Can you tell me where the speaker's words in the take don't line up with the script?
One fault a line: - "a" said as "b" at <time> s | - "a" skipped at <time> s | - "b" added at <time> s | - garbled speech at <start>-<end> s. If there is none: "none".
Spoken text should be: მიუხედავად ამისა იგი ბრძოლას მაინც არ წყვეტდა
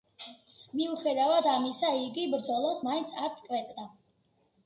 none